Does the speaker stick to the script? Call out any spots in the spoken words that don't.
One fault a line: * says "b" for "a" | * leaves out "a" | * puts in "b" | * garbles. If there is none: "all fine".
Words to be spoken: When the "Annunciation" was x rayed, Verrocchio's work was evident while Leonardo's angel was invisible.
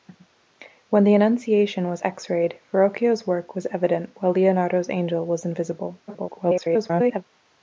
* garbles